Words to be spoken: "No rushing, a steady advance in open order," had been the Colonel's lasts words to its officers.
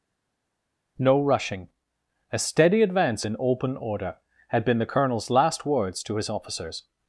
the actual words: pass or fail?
fail